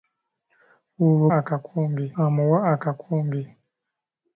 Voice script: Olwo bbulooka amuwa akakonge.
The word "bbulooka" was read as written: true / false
false